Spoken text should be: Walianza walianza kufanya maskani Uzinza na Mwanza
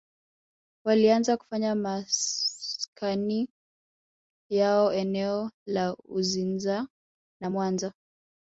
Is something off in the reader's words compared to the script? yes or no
yes